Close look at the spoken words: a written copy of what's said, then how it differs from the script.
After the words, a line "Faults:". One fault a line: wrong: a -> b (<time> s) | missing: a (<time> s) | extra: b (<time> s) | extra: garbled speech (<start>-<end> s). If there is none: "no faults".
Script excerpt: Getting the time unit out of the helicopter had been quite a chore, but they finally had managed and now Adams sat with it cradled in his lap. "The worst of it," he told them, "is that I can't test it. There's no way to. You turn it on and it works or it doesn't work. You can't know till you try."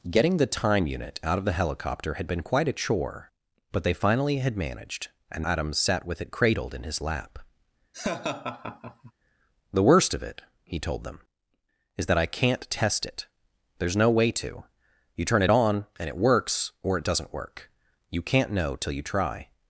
Getting the time unit out of the helicopter had been quite a chore, but they finally had managed and Adams sat with it cradled in his lap. "The worst of it," he told them, "is that I can't test it. There's no way to. You turn it on and it works or it doesn't work. You can't know till you try."
Faults:
missing: now (5.5 s)